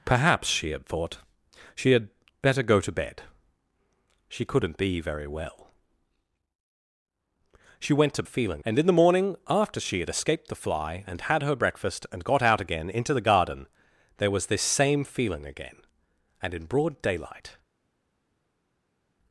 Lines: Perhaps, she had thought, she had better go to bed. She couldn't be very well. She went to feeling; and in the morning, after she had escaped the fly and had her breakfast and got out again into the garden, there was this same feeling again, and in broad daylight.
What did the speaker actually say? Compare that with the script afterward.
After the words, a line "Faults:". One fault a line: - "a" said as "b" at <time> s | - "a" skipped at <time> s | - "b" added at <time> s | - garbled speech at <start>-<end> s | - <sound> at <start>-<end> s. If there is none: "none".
Perhaps, she had thought, she had better go to bed. She couldn't be very well. She went to feeling; and in the morning, after she had escaped the fly and had her breakfast and got out again into the garden, there was this same feeling again, and in broad daylight.
Faults:
none